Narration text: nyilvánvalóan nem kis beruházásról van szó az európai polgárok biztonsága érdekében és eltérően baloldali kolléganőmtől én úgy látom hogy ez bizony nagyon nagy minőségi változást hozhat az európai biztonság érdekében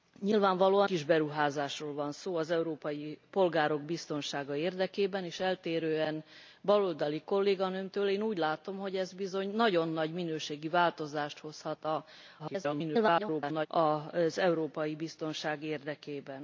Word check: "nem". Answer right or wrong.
wrong